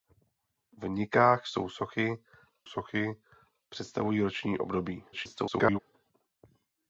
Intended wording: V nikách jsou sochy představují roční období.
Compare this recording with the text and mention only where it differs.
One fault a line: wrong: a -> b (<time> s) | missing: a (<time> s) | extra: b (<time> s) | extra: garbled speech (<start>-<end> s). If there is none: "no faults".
extra: sochy (2.6 s)
extra: garbled speech (5.1-5.8 s)